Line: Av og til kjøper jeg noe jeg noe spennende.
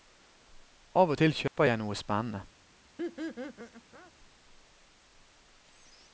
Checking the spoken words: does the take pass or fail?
fail